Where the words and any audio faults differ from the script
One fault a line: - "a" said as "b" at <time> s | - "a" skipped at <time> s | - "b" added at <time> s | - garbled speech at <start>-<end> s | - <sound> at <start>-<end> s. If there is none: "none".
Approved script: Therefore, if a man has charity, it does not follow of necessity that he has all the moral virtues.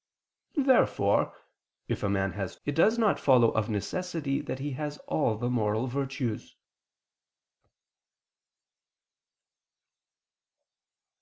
- "charity" skipped at 2.5 s